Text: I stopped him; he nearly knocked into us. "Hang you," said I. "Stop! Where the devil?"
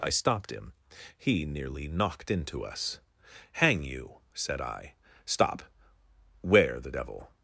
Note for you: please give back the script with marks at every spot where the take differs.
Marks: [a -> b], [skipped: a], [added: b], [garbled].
I stopped him; he nearly knocked into us. "Hang you," said I. "Stop! Where the devil?"